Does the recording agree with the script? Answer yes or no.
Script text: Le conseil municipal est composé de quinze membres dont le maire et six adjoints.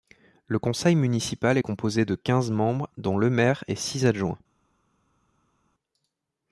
yes